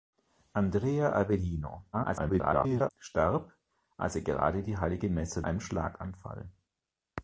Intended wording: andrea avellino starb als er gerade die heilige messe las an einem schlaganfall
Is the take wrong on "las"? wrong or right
wrong